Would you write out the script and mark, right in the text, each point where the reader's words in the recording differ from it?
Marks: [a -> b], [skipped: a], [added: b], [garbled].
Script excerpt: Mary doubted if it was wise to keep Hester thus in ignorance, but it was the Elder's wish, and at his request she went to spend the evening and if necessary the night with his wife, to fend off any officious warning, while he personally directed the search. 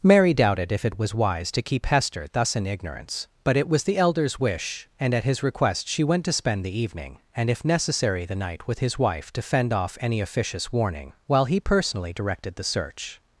Mary doubted if it was wise to keep Hester thus in ignorance, but it was the Elder's wish, and at his request she went to spend the evening and if necessary the night with his wife, to fend off any officious warning, while he personally directed the search.